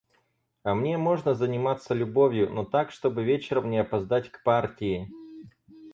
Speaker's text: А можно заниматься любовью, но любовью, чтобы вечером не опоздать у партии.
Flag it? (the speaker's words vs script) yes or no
yes